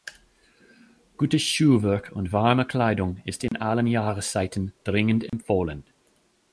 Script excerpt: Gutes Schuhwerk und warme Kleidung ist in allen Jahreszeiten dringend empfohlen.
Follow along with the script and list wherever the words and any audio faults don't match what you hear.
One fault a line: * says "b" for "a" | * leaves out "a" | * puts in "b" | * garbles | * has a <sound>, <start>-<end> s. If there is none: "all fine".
* has a dropout, 3.5-3.5 s
* has a dropout, 5.3-5.3 s